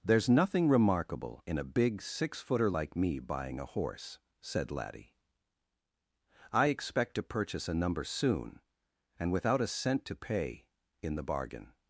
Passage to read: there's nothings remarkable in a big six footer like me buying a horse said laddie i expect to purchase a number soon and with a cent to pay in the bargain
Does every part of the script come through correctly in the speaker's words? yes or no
no